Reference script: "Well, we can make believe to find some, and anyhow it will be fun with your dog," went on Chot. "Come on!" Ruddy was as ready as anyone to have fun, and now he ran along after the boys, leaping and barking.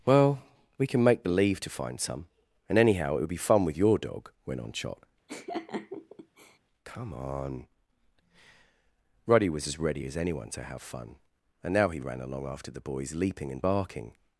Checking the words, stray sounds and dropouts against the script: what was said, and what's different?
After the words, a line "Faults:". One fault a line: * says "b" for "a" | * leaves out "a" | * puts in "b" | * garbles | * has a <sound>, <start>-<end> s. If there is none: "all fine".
"Well, we can make believe to find some, and anyhow it would be fun with your dog," went on Chot. "Come on!" Ruddy was as ready as anyone to have fun, and now he ran along after the boys, leaping and barking.
Faults:
* says "would" for "will"
* has a laugh, 5.3-6.6 s